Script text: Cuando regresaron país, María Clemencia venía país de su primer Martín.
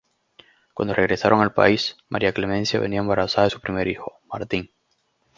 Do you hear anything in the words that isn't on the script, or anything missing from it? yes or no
yes